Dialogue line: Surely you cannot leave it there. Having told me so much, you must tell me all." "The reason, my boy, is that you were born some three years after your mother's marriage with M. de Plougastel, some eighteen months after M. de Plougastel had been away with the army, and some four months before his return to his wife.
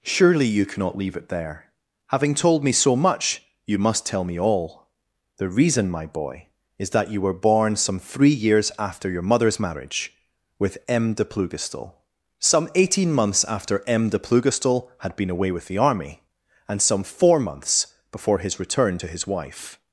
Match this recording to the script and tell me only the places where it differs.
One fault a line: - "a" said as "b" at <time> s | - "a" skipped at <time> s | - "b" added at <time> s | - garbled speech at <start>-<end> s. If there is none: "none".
none